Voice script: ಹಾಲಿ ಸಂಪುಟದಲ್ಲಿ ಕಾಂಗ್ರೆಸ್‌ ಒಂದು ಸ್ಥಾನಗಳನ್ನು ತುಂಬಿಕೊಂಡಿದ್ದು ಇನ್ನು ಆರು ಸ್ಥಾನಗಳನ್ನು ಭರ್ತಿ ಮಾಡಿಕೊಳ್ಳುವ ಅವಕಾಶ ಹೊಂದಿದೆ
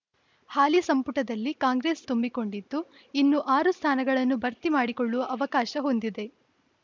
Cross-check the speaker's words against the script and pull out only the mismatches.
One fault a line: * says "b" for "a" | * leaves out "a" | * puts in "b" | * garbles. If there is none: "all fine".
* leaves out "ಒಂದು ಸ್ಥಾನಗಳನ್ನು"